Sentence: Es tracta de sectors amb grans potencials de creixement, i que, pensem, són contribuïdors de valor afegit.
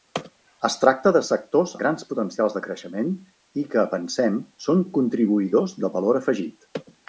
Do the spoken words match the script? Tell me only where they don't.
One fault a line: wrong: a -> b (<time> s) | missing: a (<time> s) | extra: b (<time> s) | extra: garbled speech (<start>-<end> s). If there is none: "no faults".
missing: amb (1.7 s)